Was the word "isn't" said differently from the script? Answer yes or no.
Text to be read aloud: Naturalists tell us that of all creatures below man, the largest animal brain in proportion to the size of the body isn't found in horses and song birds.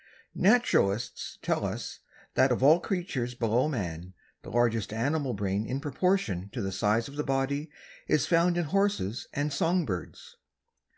yes